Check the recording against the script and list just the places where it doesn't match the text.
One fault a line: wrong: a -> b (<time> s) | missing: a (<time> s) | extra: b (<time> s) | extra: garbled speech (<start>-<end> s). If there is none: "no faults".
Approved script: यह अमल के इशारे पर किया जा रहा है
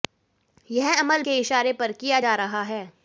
no faults